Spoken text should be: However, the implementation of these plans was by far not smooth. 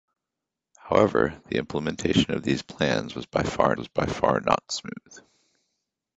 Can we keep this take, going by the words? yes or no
no